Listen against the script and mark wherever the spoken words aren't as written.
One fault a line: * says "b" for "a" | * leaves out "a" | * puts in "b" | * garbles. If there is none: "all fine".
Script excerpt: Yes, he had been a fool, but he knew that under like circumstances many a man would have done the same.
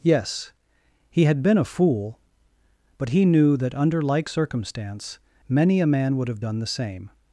* says "circumstance" for "circumstances"